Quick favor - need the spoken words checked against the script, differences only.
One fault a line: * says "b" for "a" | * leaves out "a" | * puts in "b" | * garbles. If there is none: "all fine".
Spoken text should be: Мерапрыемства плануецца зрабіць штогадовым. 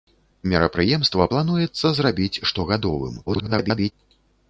* garbles